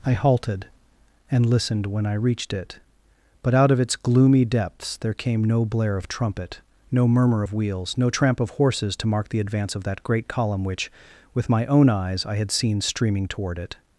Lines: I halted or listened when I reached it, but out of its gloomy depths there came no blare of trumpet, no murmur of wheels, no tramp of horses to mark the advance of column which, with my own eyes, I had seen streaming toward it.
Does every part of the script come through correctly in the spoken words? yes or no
no